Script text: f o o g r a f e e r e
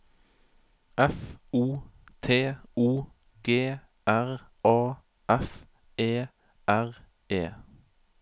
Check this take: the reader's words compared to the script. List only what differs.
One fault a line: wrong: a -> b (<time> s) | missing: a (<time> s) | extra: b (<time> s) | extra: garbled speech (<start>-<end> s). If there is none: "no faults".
extra: t (2.2 s)
missing: e (6.3 s)